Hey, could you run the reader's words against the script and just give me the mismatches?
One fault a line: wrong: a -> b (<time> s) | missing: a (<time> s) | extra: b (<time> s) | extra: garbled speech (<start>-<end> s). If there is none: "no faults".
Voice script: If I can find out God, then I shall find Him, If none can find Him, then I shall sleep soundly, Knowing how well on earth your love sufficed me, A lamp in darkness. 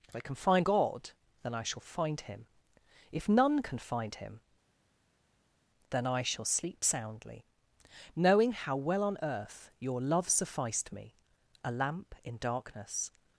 missing: out (0.7 s)